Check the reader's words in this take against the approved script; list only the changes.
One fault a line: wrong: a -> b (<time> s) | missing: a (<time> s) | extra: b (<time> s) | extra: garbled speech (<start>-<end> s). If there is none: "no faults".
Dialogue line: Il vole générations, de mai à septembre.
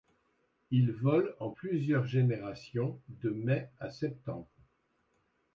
extra: en plusieurs (1.4 s)